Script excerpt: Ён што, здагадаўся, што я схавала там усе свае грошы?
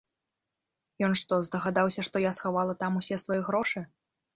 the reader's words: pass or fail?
pass